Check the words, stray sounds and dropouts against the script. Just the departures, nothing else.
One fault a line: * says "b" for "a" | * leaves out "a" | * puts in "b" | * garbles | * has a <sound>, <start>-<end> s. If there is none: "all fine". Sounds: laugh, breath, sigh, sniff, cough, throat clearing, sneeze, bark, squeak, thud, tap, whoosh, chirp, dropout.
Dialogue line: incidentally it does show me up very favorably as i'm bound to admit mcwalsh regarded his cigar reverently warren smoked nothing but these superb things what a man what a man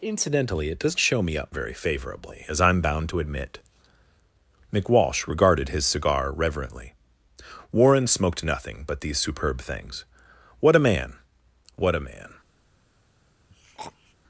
* has a throat clearing, 13.5-14.1 s